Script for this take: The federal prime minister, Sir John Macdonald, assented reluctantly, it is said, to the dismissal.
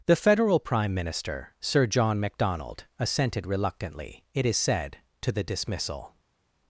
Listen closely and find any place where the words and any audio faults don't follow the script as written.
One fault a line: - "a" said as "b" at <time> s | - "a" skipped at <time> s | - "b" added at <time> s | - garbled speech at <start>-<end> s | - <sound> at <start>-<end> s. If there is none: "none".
none